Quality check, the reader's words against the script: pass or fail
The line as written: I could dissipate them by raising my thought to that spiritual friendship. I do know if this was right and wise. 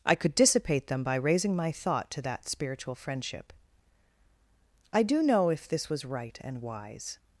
pass